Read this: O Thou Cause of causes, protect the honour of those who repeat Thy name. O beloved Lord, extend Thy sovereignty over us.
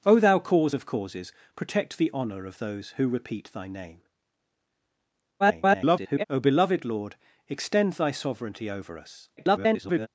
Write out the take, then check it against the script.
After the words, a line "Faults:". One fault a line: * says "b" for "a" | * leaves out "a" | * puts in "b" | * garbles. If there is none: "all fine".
O Thou Cause of causes, protect the honour of those who repeat Thy name. [garbled] O beloved Lord, extend Thy sovereignty over us. [garbled]
Faults:
* garbles
* garbles